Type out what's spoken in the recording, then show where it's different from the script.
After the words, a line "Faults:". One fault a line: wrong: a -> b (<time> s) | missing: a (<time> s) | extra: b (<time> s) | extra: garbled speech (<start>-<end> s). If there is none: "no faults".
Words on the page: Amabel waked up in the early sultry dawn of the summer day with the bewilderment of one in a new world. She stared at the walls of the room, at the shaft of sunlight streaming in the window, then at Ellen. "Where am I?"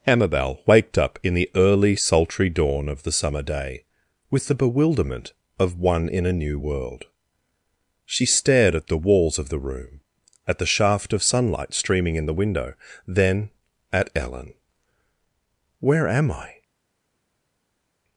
Amabel waked up in the early sultry dawn of the summer day with the bewilderment of one in a new world. She stared at the walls of the room, at the shaft of sunlight streaming in the window, then at Ellen. "Where am I?"
Faults:
no faults